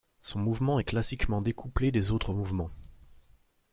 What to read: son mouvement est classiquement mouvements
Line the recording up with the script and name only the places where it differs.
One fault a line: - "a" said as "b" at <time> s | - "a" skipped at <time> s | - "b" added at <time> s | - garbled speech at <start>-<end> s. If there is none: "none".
- "découplé des autres" added at 1.4 s